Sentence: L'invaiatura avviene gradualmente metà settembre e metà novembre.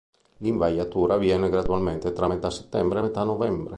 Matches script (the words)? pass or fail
fail